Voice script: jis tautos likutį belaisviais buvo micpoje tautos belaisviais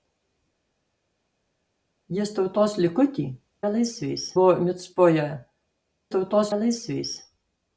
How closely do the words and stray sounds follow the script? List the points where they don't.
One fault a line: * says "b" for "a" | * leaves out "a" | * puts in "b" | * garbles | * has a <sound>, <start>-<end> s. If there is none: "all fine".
all fine